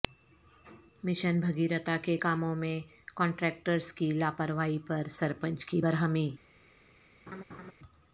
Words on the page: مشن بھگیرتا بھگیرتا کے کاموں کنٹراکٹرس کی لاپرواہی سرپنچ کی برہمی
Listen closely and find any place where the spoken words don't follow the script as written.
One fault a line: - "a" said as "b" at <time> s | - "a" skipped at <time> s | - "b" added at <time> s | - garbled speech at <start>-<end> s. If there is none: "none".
- "بھگیرتا" skipped at 2.0 s
- "میں" added at 2.5 s
- "پر" added at 4.9 s